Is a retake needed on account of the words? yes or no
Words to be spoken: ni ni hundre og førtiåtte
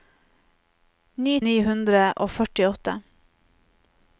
no